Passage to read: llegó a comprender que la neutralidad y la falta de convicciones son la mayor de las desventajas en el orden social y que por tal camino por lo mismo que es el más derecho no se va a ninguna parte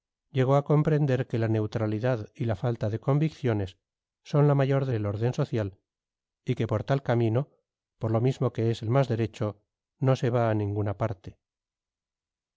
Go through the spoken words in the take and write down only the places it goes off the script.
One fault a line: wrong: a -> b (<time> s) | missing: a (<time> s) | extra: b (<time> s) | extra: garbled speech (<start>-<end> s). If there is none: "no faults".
missing: las desventajas en (4.9 s)